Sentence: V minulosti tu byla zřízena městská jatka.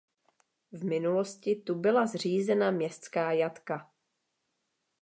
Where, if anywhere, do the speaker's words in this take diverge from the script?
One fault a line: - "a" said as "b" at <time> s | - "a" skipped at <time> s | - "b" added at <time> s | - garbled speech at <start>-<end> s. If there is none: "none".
none